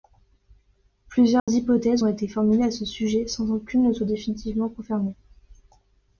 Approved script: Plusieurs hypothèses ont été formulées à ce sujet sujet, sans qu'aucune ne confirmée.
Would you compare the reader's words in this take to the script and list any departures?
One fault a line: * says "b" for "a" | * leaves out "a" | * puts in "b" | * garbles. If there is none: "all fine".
* leaves out "sujet"
* puts in "soit définitivement"